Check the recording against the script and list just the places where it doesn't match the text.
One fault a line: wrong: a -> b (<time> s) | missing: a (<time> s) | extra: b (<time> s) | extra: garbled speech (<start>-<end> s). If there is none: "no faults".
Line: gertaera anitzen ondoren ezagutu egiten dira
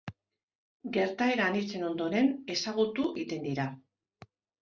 no faults